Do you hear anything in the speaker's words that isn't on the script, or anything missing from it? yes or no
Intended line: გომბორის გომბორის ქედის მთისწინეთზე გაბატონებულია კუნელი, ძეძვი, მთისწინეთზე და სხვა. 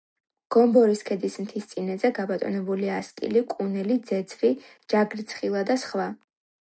yes